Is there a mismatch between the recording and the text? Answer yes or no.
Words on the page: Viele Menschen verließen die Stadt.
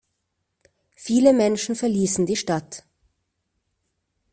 no